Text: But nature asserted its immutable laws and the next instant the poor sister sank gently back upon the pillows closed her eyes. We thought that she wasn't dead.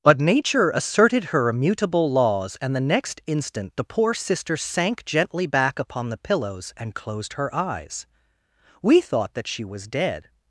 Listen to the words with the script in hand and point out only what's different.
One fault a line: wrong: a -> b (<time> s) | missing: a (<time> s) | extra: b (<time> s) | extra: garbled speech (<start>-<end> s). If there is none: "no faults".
wrong: its -> her (1.2 s)
extra: and (6.8 s)
wrong: wasn't -> was (9.6 s)